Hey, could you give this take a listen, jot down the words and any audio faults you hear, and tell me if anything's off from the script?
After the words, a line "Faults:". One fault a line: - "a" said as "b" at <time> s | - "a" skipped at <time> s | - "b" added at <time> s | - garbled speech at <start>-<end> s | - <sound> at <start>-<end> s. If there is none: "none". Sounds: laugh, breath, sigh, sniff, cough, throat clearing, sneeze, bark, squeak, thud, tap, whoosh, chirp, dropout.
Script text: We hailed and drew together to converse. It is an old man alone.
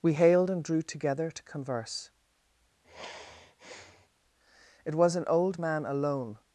We hailed and drew together to converse. It was an old man alone.
Faults:
- sigh at 2.8-4.1 s
- "is" said as "was" at 5.0 s